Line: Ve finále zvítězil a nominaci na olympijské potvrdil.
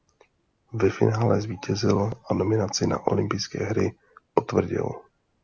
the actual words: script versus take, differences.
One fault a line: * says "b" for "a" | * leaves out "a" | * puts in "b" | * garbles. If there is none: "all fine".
* puts in "hry"